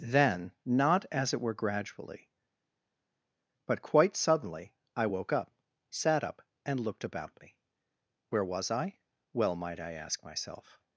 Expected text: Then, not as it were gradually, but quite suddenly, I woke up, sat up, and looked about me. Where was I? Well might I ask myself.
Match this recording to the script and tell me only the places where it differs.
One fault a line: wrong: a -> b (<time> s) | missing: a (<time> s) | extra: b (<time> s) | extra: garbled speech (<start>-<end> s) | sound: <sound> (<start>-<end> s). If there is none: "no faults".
no faults